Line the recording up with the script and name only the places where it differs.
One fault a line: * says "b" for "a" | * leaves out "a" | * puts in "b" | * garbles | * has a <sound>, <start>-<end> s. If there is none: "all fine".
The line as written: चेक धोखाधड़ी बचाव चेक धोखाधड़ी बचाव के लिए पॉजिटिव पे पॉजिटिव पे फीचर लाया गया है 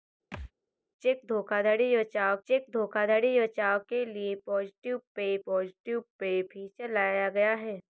* has a thud, 0.3-0.5 s